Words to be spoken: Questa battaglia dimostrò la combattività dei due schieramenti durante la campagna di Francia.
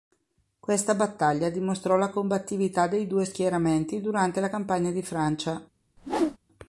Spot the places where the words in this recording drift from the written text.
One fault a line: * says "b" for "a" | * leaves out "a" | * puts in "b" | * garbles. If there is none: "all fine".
all fine